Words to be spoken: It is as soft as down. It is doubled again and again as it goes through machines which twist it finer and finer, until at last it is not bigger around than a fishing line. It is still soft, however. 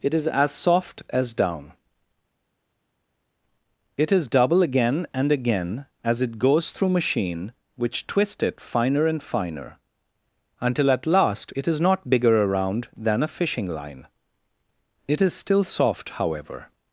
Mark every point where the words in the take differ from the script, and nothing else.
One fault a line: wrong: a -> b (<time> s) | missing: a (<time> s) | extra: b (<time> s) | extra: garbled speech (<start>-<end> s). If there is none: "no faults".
wrong: doubled -> double (4.3 s)
wrong: machines -> machine (6.9 s)